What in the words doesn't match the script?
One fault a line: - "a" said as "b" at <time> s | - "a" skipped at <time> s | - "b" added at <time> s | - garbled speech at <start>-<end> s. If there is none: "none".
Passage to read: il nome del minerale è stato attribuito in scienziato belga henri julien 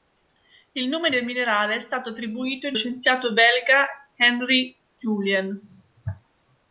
none